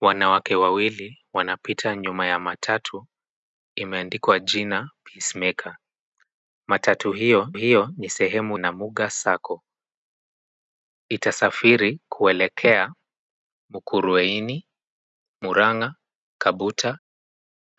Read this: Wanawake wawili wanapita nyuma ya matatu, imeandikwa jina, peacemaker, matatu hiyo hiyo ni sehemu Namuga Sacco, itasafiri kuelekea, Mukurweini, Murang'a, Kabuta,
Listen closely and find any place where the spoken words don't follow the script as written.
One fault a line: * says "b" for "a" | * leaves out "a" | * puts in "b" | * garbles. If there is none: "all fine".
all fine